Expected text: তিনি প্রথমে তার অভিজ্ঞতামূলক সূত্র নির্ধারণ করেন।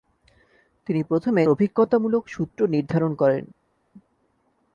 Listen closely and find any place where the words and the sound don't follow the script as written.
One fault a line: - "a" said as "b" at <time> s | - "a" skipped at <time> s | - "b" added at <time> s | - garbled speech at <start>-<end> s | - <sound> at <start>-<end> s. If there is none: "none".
- "তার" skipped at 1.4 s